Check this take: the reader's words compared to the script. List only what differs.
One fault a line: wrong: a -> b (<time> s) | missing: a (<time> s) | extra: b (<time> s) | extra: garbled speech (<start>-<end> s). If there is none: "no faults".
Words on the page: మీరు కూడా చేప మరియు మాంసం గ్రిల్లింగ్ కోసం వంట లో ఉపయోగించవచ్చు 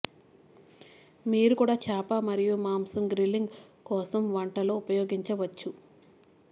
no faults